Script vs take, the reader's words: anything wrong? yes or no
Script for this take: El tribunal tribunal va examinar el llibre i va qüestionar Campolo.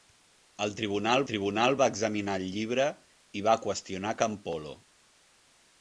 no